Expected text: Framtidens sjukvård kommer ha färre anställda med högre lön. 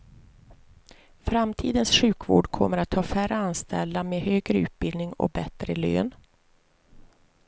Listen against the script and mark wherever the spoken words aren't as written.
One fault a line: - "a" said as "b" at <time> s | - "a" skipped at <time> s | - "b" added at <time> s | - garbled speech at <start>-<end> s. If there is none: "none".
- "att" added at 2.8 s
- "utbildning och bättre" added at 4.6 s